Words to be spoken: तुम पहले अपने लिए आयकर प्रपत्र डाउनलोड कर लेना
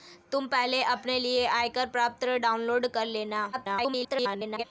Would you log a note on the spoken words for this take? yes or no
yes